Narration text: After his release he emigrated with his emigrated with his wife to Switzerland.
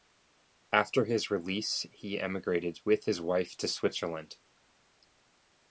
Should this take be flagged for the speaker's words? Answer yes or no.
yes